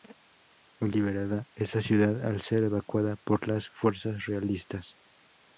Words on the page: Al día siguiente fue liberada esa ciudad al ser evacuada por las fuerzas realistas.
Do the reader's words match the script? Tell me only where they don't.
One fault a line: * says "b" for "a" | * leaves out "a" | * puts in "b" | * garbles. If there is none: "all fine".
* leaves out "día siguiente fue"